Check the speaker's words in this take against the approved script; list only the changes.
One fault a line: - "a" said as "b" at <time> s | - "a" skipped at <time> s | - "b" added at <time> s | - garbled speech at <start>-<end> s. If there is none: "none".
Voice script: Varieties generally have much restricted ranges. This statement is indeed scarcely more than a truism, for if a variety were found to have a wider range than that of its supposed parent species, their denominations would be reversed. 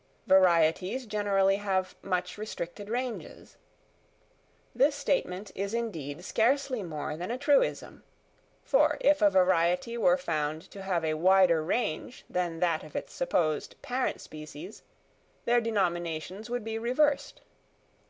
none